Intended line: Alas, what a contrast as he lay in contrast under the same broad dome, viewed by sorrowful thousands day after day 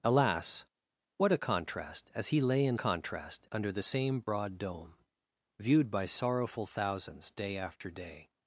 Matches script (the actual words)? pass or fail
pass